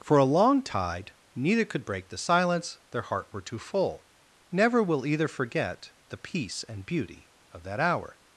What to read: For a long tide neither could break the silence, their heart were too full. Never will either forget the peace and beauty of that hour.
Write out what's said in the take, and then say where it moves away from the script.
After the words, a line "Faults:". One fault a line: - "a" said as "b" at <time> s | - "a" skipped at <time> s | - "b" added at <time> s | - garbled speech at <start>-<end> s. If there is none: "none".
For a long tide neither could break the silence, their heart were too full. Never will either forget the peace and beauty of that hour.
Faults:
none